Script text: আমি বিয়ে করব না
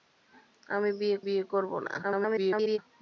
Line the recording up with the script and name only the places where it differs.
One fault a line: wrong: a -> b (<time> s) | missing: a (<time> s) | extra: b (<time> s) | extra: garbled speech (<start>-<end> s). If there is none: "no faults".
extra: বিয়ে (1.2 s)
extra: garbled speech (2.0-2.8 s)